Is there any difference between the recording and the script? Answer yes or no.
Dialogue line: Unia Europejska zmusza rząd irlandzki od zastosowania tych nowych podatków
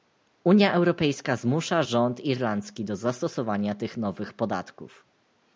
yes